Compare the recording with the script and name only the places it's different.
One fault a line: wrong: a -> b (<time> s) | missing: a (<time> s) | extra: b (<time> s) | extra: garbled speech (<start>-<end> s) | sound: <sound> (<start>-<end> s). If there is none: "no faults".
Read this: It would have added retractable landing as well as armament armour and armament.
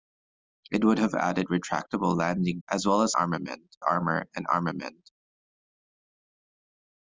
no faults